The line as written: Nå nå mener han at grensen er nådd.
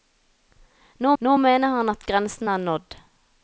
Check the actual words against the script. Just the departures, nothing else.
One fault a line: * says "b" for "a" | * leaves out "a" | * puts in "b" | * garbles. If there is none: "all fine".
all fine